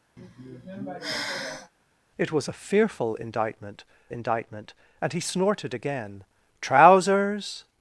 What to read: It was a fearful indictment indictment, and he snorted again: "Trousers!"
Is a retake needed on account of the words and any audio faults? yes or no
yes